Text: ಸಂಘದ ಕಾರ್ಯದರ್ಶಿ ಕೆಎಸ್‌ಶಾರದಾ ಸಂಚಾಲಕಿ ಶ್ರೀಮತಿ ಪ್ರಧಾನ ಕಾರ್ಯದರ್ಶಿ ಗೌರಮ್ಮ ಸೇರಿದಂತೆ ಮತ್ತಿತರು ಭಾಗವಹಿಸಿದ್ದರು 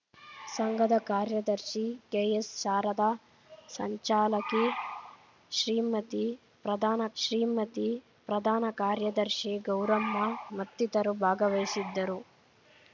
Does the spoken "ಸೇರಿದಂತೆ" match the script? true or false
false